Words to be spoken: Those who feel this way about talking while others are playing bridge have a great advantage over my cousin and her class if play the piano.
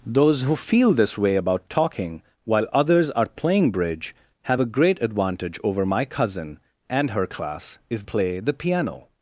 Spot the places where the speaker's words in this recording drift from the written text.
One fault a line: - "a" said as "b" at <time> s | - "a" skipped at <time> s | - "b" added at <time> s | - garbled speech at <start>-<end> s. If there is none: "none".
none